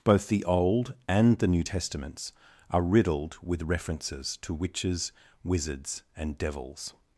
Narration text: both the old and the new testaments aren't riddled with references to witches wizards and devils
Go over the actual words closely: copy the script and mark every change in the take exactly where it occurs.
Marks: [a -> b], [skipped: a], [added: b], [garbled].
both the old and the new testaments [aren't -> are] riddled with references to witches wizards and devils